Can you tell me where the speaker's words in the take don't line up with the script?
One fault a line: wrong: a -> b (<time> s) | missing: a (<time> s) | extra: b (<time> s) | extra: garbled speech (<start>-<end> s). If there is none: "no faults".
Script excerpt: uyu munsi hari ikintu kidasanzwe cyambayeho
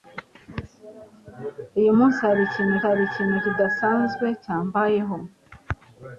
extra: hari ikintu (2.9 s)